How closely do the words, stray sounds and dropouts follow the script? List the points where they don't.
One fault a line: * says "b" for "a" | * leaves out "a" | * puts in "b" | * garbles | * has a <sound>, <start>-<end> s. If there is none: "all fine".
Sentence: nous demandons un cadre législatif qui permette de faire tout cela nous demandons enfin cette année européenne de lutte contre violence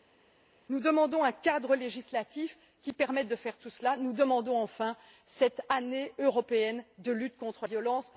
all fine